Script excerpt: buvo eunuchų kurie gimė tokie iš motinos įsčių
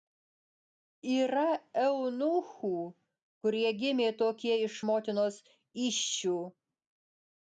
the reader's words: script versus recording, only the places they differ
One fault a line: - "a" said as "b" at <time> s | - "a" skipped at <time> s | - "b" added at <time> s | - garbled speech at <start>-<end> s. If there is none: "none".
- "buvo" said as "yra" at 1.1 s